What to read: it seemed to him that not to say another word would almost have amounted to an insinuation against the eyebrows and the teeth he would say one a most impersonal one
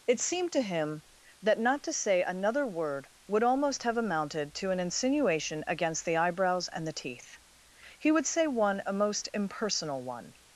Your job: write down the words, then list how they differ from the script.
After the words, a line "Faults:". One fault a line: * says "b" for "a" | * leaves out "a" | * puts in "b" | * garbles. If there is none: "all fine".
it seemed to him that not to say another word would almost have amounted to an insinuation against the eyebrows and the teeth he would say one a most impersonal one
Faults:
all fine